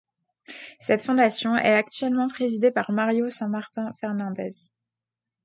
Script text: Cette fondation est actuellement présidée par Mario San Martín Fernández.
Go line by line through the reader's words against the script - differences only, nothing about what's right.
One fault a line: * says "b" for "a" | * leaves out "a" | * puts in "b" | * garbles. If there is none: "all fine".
all fine